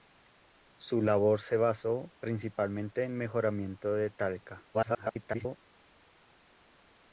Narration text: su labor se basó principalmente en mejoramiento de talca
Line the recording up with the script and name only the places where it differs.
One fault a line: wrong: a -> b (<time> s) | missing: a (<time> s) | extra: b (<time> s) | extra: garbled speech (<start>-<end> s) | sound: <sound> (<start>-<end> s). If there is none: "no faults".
extra: garbled speech (4.7-5.6 s)